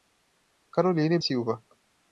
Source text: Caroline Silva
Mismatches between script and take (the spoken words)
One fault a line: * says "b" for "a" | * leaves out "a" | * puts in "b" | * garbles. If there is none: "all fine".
all fine